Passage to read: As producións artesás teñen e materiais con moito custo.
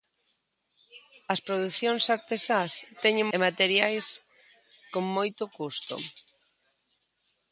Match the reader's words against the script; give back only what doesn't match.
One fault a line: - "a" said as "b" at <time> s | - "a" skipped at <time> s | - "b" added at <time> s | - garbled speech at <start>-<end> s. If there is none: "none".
none